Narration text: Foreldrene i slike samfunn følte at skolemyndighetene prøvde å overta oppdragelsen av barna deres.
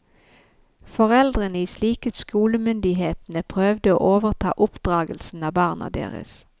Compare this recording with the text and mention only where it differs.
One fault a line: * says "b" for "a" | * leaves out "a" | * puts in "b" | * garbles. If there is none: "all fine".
* leaves out "samfunn følte"